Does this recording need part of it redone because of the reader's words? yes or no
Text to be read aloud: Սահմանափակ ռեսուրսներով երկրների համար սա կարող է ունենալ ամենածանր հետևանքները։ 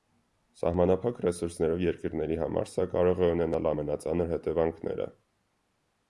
no